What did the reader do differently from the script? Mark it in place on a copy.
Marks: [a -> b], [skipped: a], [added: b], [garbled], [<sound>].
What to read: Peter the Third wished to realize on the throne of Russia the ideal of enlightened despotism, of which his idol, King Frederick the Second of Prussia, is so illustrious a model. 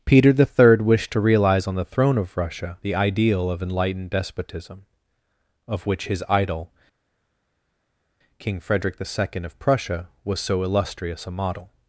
Peter the Third wished to realize on the throne of Russia the ideal of enlightened despotism, of which his idol, King Frederick the Second of Prussia, [is -> was] so illustrious a model.